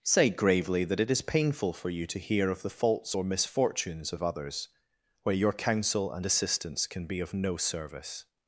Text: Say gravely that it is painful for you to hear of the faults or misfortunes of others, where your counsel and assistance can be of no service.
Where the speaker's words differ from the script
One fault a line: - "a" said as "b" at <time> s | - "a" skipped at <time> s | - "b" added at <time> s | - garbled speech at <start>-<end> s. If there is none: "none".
none